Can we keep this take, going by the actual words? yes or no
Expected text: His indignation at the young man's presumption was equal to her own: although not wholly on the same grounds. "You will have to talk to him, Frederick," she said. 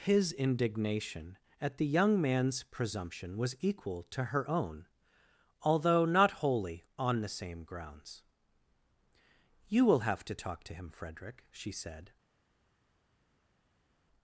yes